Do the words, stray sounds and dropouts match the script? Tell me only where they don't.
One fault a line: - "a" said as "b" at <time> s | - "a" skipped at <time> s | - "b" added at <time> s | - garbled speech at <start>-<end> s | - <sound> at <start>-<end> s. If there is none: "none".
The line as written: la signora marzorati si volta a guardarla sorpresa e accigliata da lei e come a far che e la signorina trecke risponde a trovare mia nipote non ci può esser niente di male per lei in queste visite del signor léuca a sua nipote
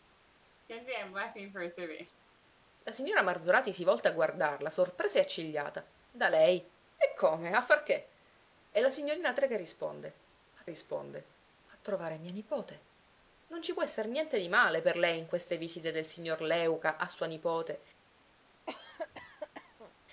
- laugh at 0.7-2.2 s
- "risponde a" added at 10.6 s
- cough at 18.7-19.9 s